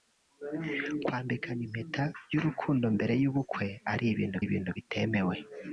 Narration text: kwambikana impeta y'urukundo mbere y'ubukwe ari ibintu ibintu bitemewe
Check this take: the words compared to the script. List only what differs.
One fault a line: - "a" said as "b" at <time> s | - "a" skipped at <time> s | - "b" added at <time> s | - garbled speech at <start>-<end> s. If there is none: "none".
none